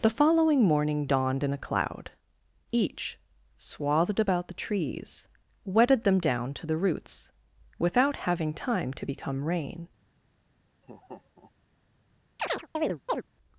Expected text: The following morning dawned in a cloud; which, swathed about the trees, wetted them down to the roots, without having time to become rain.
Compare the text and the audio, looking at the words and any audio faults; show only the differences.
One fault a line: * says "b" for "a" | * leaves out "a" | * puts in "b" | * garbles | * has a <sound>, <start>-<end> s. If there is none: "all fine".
* says "each" for "which"
* has a laugh, 10.8-11.5 s
* has a chirp, 12.4-13.2 s